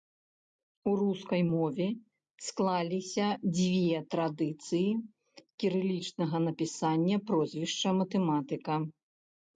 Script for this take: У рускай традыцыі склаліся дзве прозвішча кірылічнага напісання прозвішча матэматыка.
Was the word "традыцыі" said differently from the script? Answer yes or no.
yes